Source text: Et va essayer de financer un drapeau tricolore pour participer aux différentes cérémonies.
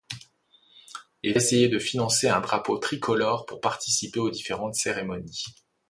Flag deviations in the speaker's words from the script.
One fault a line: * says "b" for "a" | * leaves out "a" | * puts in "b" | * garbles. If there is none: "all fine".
* leaves out "va"